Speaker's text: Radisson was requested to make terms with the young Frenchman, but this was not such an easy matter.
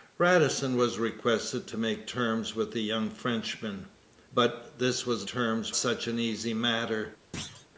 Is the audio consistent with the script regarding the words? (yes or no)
no